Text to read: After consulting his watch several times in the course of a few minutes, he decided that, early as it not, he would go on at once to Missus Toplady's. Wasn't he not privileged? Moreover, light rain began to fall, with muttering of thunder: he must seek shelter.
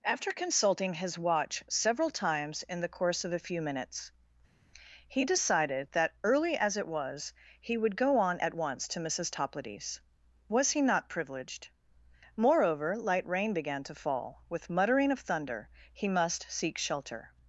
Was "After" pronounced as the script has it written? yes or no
yes